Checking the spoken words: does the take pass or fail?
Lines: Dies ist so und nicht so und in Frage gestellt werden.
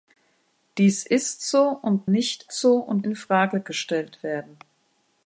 pass